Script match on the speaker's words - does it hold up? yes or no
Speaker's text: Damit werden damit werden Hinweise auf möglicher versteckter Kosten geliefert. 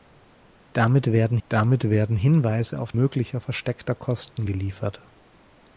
yes